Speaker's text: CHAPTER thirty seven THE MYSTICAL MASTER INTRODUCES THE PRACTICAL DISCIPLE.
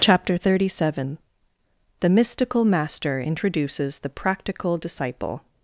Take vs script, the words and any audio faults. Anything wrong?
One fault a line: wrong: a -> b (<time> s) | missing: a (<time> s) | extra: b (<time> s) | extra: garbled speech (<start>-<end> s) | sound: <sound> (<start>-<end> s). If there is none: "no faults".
no faults